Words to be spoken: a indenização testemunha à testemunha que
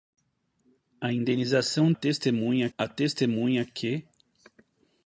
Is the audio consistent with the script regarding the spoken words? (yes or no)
yes